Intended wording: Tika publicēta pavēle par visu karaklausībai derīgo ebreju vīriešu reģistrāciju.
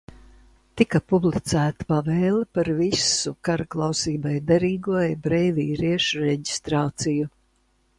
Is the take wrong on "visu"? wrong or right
right